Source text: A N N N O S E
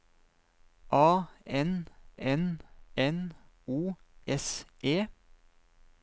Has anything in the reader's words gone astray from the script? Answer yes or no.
no